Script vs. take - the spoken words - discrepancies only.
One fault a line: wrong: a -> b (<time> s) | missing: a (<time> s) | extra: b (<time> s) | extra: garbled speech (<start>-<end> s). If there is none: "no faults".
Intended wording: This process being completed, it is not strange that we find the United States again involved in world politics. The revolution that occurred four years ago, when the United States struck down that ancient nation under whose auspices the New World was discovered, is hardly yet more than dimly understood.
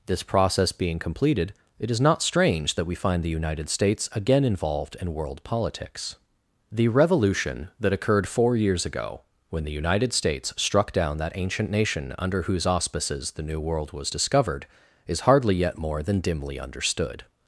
no faults